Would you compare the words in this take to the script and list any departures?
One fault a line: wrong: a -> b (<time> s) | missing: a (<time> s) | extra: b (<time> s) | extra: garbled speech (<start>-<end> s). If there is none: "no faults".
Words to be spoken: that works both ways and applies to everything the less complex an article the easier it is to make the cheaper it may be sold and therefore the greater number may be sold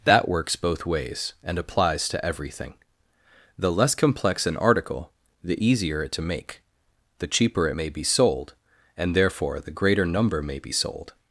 missing: is (6.1 s)